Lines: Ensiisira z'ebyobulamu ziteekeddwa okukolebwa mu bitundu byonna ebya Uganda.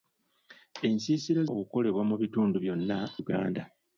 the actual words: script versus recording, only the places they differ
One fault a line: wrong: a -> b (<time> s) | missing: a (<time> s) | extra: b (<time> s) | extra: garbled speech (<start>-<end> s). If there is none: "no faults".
missing: z'ebyobulamu ziteekeddwa (1.4 s)
missing: ebya (3.0 s)